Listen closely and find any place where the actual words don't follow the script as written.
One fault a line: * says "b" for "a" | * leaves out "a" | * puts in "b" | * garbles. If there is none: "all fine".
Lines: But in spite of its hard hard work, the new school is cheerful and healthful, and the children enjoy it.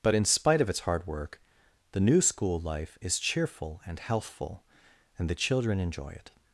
* leaves out "hard"
* puts in "life"